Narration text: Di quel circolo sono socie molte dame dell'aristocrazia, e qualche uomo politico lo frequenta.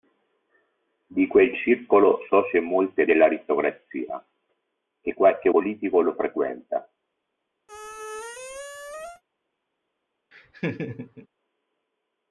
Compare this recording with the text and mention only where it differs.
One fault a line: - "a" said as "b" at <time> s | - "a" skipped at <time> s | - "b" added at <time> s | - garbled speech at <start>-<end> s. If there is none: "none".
- "sono" skipped at 2.2 s
- "dame" skipped at 3.0 s
- "uomo" skipped at 5.5 s